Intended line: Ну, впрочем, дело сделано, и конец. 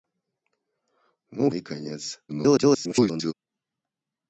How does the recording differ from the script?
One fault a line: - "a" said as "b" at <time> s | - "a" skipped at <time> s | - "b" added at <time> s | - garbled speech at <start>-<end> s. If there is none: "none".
- "впрочем дело сделано" skipped at 1.5 s
- garbled speech at 2.3-3.3 s